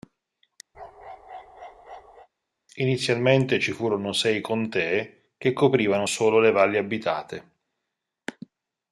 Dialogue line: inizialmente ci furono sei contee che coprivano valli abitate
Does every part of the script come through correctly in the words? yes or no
no